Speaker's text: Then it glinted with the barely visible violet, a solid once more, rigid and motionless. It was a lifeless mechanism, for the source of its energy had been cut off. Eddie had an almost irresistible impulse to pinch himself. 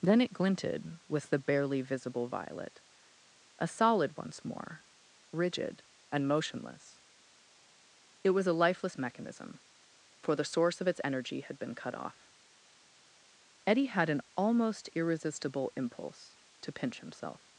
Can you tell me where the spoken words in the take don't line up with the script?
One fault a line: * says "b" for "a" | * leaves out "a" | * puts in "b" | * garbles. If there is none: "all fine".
all fine